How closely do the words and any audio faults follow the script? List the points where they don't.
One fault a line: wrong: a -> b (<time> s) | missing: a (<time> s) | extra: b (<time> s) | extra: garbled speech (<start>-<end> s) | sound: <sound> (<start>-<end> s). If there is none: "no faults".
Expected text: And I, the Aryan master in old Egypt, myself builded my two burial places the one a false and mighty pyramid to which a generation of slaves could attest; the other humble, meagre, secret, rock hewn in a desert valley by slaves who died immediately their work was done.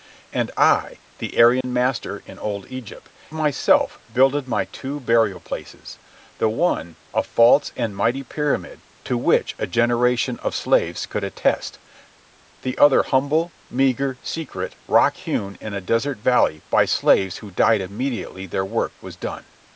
sound: dropout (1.6-1.6 s)